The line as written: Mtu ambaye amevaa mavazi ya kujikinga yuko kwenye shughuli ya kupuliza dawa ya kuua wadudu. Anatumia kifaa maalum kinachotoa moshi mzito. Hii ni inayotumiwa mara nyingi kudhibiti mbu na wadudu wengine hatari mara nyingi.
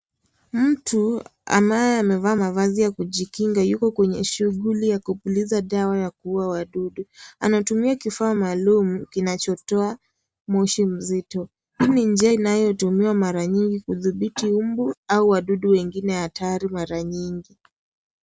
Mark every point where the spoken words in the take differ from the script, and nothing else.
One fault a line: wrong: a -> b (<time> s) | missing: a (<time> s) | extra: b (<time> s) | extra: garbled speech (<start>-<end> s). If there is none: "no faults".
extra: njia (12.1 s)
wrong: na -> au (15.1 s)